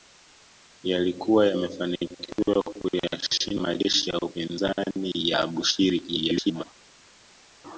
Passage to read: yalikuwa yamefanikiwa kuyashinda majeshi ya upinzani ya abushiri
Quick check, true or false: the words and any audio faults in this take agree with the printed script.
false